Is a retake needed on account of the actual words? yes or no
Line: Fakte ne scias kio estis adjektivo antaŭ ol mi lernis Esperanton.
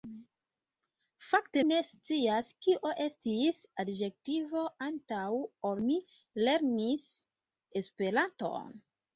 no